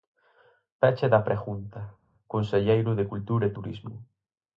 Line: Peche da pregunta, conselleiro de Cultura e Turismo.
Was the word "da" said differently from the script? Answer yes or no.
no